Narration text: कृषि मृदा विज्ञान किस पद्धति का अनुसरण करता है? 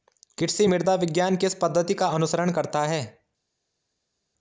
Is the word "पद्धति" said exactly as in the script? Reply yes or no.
yes